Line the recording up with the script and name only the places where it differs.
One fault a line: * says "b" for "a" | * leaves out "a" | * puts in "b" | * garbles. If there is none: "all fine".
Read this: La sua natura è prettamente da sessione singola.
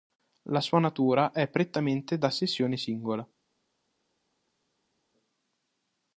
all fine